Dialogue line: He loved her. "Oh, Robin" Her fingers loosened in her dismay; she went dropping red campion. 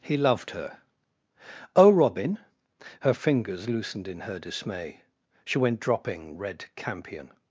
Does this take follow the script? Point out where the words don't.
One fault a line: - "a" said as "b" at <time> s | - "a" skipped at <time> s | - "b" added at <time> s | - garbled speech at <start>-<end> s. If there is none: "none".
none